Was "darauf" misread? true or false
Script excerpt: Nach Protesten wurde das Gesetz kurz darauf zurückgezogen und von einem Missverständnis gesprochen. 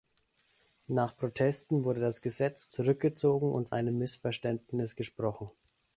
true